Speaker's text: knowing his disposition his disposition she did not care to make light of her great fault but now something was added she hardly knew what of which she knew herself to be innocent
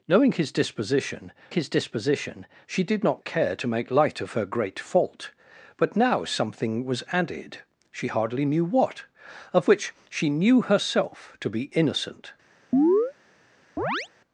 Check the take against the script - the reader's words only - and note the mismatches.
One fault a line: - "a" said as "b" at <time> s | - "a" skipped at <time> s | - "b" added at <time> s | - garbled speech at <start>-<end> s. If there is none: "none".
none